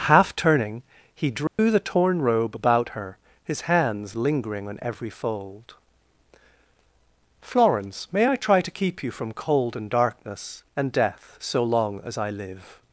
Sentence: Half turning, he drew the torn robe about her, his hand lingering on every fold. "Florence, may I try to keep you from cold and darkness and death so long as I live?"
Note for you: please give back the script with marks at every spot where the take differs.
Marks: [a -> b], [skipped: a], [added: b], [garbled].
Half turning, he drew the torn robe about her, his [hand -> hands] lingering on every fold. "Florence, may I try to keep you from cold and darkness and death so long as I live?"